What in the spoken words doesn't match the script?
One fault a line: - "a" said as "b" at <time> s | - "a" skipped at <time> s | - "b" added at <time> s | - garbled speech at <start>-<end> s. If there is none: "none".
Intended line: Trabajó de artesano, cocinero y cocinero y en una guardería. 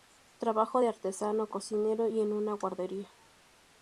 - "cocinero y" skipped at 2.2 s